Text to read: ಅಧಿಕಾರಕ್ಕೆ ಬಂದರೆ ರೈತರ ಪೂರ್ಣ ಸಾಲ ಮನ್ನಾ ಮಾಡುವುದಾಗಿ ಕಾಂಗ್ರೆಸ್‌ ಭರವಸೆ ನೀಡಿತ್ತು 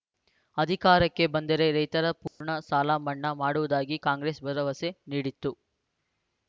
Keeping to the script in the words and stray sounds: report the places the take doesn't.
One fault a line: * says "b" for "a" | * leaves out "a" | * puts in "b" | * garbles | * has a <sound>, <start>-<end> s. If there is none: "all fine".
* has a dropout, 2.3-2.4 s